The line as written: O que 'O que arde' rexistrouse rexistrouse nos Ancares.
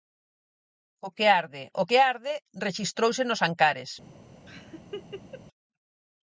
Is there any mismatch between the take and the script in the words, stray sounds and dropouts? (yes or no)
yes